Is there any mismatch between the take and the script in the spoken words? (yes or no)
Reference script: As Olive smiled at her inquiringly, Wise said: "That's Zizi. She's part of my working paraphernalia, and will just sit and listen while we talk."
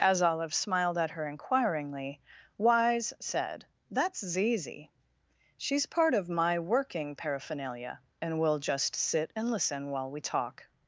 no